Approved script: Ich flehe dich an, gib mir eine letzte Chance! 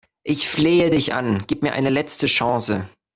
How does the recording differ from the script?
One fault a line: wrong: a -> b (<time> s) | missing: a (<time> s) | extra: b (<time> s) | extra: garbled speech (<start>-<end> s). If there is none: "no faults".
no faults